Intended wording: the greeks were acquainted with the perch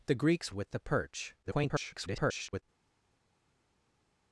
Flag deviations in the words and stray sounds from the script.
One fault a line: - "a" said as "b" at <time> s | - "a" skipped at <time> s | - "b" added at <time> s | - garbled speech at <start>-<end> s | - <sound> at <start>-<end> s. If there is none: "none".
- "were acquainted" skipped at 0.5 s
- garbled speech at 1.4-2.6 s